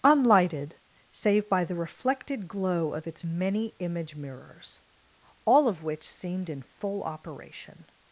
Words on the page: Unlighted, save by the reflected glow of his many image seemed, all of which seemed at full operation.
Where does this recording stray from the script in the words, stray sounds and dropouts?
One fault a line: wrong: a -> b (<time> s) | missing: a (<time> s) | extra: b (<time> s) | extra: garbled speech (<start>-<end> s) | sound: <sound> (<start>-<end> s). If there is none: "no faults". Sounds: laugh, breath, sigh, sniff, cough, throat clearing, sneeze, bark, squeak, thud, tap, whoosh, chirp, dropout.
wrong: his -> its (3.1 s)
wrong: seemed -> mirrors (4.1 s)
wrong: at -> in (6.5 s)